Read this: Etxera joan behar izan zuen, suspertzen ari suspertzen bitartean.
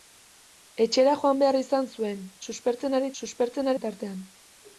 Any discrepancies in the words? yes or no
no